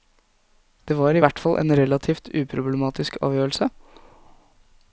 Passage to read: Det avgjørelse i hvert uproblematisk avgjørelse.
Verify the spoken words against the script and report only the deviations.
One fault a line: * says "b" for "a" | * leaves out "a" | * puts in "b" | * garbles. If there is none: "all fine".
* says "var" for "avgjørelse"
* puts in "fall en relativt"